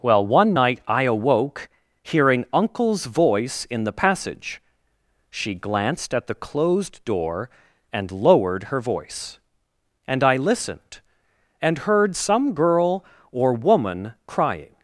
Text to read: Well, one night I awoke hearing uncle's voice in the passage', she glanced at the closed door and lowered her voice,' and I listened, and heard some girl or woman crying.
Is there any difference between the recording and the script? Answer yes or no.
no